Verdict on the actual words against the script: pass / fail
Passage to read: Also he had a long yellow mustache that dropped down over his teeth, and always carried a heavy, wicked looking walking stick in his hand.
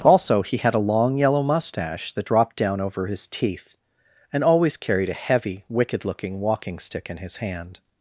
pass